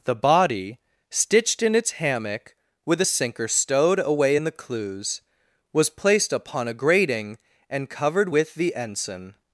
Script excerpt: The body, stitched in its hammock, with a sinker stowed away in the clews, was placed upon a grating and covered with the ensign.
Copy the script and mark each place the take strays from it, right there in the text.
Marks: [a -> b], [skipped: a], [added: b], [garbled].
The body, stitched in its hammock, with a sinker stowed away in the clews, was placed upon a grating and covered with the ensign.